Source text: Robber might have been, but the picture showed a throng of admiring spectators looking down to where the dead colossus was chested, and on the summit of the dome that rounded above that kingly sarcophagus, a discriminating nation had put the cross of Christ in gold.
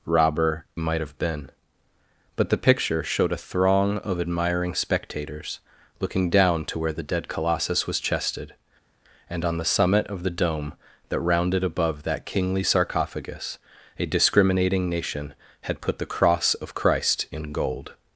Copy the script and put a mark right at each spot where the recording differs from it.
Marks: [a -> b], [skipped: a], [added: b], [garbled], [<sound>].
Robber might have been, but the picture showed a throng of admiring spectators looking down to where the dead colossus was chested, and on the summit of the dome that rounded above that kingly sarcophagus, a discriminating nation had put the cross of Christ in gold.